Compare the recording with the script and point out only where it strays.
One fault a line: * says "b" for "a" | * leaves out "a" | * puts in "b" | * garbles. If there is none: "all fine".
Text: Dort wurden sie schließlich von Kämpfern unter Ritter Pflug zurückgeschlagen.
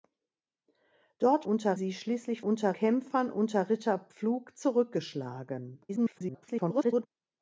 * says "unter" for "wurden"
* says "unter" for "von"
* garbles